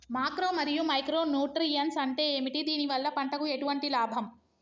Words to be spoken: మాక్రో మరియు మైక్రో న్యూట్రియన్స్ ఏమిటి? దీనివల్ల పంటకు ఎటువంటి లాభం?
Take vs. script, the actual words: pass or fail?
fail